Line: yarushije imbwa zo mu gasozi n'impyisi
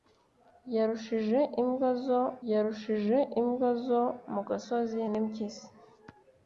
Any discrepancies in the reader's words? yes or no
yes